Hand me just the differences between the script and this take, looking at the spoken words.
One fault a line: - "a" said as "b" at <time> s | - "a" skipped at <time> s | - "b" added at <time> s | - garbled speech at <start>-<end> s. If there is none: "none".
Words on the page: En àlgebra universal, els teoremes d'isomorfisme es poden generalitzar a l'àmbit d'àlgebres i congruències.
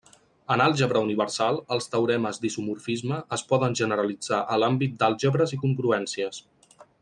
none